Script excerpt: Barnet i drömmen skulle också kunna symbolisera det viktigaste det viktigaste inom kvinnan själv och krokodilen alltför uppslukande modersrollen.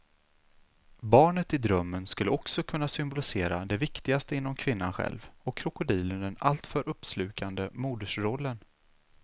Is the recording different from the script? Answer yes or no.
yes